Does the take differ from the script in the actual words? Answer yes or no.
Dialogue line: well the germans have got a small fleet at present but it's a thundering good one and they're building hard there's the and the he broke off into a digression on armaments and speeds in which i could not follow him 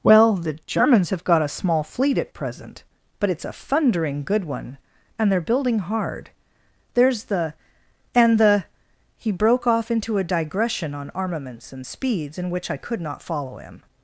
no